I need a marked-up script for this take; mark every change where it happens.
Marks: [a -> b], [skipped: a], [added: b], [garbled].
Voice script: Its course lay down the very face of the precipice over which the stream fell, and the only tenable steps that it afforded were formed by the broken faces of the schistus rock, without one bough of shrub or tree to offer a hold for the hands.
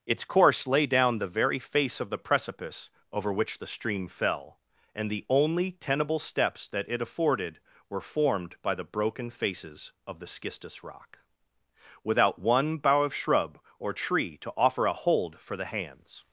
Its course lay down the very face of the precipice over which the stream fell, and the only tenable steps that it afforded were formed by the broken faces of the schistus rock, without one bough of shrub or tree to offer a hold for the hands.